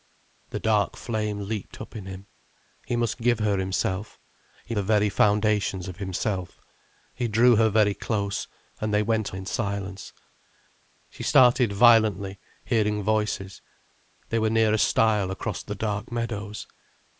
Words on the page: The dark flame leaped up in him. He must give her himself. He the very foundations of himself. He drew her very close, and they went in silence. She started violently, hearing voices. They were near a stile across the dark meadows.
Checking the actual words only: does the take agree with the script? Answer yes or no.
yes